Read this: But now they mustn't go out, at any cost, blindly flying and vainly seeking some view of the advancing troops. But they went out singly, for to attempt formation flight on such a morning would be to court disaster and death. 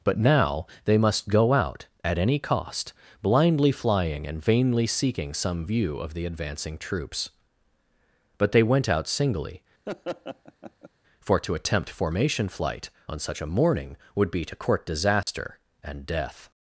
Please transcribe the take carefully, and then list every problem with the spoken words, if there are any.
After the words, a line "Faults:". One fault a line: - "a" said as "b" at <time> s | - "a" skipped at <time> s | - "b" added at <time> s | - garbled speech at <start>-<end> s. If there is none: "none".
But now they must go out, at any cost, blindly flying and vainly seeking some view of the advancing troops. But they went out singly, for to attempt formation flight on such a morning would be to court disaster and death.
Faults:
- "mustn't" said as "must" at 1.0 s